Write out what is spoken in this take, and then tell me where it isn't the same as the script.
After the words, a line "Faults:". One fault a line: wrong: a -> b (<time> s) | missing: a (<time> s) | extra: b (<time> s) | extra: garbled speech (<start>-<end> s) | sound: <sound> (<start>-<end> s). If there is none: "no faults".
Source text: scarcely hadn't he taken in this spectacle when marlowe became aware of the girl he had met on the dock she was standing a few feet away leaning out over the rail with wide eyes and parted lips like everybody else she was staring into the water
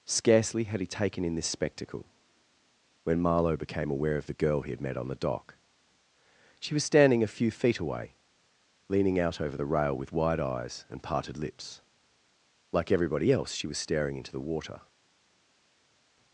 scarcely had he taken in this spectacle when marlowe became aware of the girl he had met on the dock she was standing a few feet away leaning out over the rail with wide eyes and parted lips like everybody else she was staring into the water
Faults:
wrong: hadn't -> had (0.6 s)